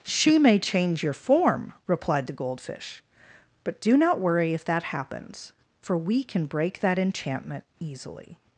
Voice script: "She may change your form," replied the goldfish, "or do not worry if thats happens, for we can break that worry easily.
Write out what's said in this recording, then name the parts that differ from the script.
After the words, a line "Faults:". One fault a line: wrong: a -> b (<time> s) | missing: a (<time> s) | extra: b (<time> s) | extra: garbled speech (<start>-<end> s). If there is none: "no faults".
"She may change your form," replied the goldfish, "but do not worry if that happens, for we can break that enchantment easily.
Faults:
wrong: or -> but (3.6 s)
wrong: thats -> that (4.6 s)
wrong: worry -> enchantment (7.0 s)